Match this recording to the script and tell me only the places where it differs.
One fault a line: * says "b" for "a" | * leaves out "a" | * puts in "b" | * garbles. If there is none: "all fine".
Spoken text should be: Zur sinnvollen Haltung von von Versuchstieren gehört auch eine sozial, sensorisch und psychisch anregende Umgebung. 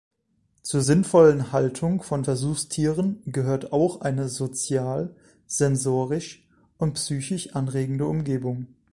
* leaves out "von"